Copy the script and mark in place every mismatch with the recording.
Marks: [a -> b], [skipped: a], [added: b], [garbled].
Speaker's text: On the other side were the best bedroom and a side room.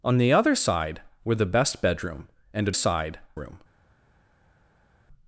On the other side were the best bedroom and a side room.